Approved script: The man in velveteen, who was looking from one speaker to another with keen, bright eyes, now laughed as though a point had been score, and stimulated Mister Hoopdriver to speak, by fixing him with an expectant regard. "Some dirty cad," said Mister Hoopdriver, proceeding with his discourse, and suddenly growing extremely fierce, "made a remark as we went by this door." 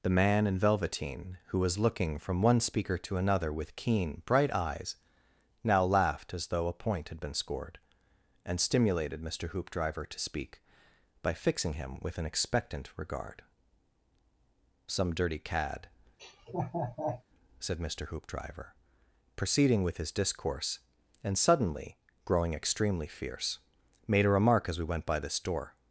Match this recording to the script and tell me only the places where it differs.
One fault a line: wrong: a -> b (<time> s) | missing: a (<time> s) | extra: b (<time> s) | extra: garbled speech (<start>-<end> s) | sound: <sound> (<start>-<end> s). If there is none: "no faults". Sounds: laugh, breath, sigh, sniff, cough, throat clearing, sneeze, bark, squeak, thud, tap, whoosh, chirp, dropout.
wrong: score -> scored (7.3 s)
sound: laugh (16.2-17.2 s)